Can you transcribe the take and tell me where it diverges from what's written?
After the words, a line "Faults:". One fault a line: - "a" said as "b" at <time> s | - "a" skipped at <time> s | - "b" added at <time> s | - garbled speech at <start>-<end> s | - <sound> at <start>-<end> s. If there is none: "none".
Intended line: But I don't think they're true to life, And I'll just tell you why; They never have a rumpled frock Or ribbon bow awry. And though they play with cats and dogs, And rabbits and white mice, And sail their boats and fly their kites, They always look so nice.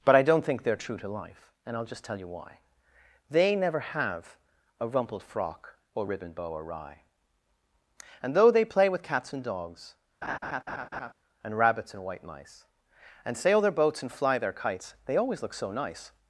But I don't think they're true to life, And I'll just tell you why; They never have a rumpled frock Or ribbon bow awry. And though they play with cats and dogs, And rabbits and white mice, And sail their boats and fly their kites, They always look so nice.
Faults:
- laugh at 10.2-11.1 s